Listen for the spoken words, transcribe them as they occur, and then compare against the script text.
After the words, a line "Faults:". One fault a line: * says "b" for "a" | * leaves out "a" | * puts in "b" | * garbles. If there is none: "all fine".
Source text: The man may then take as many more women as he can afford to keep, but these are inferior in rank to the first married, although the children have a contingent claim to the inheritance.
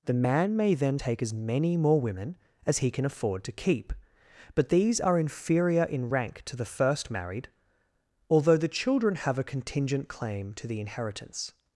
The man may then take as many more women as he can afford to keep, but these are inferior in rank to the first married, although the children have a contingent claim to the inheritance.
Faults:
all fine